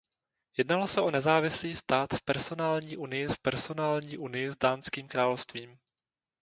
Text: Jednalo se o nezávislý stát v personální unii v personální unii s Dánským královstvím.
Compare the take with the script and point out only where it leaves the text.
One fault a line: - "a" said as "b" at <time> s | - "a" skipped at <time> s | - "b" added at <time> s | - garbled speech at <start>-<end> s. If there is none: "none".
none